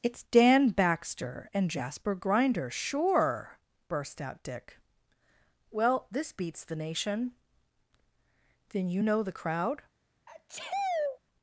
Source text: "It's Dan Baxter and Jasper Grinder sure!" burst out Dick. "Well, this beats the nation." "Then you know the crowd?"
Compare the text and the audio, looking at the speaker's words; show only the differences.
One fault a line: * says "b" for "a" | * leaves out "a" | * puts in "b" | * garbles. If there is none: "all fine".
all fine